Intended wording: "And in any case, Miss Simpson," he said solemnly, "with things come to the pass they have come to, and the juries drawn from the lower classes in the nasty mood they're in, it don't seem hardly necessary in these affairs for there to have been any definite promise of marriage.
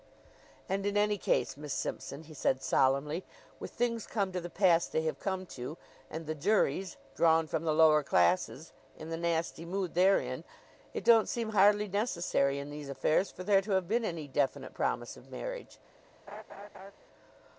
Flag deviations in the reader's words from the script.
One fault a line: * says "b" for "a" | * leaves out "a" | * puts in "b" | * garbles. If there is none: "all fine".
all fine